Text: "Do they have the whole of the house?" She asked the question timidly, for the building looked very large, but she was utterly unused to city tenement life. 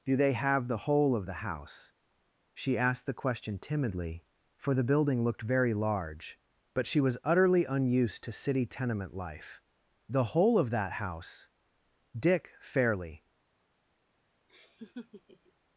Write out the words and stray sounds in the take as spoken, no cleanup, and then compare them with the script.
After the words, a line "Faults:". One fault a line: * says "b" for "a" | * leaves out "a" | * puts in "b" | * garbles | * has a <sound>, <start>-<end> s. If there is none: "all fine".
"Do they have the whole of the house?" She asked the question timidly, for the building looked very large, but she was utterly unused to city tenement life. "The whole of that house?" Dick fairly
Faults:
* puts in "The whole of that house Dick fairly"
* has a laugh, 14.5-15.5 s